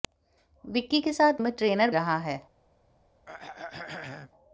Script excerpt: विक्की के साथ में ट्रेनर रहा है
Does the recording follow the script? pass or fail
pass